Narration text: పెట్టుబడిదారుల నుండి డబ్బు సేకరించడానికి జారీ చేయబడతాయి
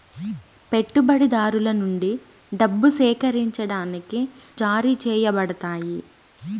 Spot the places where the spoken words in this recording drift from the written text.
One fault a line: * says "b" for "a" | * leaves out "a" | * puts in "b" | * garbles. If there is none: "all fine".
all fine